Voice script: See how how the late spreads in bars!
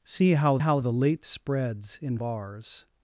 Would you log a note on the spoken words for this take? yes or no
no